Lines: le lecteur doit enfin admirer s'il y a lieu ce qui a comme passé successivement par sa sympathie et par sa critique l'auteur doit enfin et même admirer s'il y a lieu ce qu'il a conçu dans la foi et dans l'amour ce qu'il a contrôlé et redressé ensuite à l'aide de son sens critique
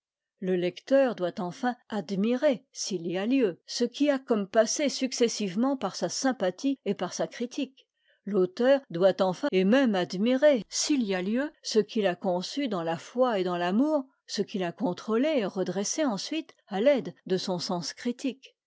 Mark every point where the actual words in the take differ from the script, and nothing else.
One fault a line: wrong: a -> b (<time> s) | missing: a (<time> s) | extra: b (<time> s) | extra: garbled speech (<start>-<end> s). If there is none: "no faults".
no faults